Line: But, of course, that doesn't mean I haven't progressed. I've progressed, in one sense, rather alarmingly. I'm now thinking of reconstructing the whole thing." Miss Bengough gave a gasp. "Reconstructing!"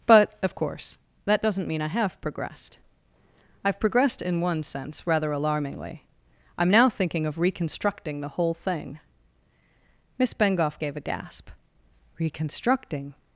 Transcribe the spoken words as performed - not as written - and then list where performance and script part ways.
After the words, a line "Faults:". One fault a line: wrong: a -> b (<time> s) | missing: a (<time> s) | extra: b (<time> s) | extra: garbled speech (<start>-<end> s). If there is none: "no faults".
But, of course, that doesn't mean I have progressed. I've progressed, in one sense, rather alarmingly. I'm now thinking of reconstructing the whole thing." Miss Bengough gave a gasp. "Reconstructing!"
Faults:
wrong: haven't -> have (1.9 s)